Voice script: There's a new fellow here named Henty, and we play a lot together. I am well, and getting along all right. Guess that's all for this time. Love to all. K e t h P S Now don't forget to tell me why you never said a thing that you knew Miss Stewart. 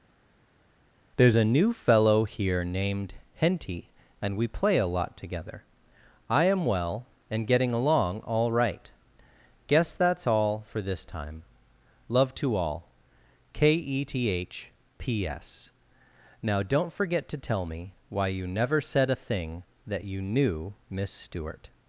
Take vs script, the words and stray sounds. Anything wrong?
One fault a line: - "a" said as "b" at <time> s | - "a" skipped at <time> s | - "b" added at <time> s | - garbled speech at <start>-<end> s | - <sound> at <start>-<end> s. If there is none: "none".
none